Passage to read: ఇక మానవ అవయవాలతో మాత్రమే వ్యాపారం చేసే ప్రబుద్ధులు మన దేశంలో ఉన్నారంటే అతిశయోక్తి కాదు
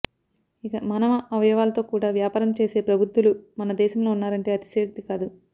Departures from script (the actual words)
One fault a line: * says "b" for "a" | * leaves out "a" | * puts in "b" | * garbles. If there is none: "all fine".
* says "కూడా" for "మాత్రమే"